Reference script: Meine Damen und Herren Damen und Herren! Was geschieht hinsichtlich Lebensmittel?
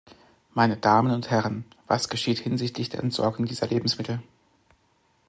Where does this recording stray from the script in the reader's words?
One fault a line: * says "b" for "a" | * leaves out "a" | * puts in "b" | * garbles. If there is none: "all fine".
* says "Was geschieht hinsichtlich der Entsorgung dieser" for "Damen und Herren Was geschieht hinsichtlich"